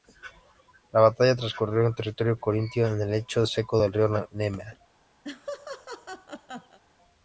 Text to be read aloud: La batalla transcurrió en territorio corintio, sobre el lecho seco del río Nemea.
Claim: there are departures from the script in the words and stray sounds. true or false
true